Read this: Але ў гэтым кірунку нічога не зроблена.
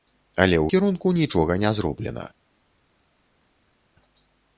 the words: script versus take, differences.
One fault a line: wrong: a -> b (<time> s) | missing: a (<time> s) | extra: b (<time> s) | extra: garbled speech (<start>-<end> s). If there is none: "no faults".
missing: гэтым (0.7 s)